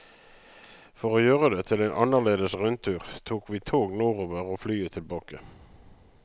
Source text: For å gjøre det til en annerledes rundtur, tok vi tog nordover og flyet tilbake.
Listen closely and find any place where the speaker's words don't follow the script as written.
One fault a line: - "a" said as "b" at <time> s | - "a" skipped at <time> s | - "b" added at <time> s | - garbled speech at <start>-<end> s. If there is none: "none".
none